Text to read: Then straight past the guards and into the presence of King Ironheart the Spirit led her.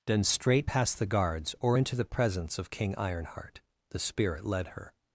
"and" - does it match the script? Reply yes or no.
no